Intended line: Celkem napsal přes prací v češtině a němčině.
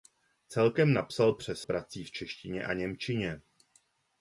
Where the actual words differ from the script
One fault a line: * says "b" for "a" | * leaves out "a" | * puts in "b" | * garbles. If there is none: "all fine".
all fine